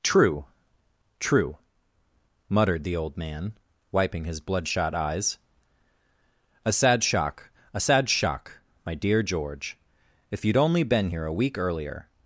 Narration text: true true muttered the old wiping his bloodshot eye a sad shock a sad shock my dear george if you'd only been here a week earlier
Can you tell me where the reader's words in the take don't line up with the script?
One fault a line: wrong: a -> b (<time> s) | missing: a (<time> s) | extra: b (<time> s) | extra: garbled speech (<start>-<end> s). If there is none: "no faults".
extra: man (3.2 s)
wrong: eye -> eyes (5.0 s)